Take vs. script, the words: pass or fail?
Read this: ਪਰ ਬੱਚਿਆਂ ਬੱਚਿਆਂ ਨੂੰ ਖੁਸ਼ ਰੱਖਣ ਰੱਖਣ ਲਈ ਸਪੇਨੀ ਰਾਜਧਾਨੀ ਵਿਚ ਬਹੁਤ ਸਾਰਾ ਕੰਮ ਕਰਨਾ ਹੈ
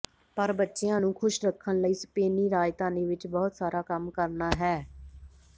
fail